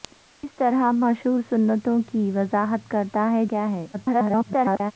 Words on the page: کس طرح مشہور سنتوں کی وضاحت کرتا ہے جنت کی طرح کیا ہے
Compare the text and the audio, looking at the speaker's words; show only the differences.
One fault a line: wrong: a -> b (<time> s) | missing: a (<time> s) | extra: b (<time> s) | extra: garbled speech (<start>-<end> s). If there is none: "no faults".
missing: جنت کی طرح (3.5 s)
extra: garbled speech (3.9-4.9 s)